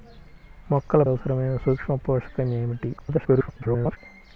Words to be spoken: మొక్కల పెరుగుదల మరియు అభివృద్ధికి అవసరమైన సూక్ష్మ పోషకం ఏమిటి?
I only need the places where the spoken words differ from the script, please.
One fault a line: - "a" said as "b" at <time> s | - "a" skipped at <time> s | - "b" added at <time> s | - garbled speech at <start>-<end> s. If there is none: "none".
- "పెరుగుదల మరియు అభివృద్ధికి" skipped at 1.0 s
- garbled speech at 3.0-4.0 s